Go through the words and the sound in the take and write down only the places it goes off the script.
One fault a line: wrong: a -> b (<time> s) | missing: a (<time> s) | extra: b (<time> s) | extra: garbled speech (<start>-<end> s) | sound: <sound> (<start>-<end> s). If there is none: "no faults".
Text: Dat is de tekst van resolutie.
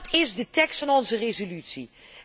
extra: onze (0.9 s)